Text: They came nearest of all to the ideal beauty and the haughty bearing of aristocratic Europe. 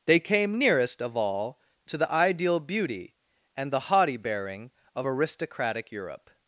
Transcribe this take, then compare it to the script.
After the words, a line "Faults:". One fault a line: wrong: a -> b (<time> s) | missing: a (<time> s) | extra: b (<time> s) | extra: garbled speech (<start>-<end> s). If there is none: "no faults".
They came nearest of all to the ideal beauty and the haughty bearing of aristocratic Europe.
Faults:
no faults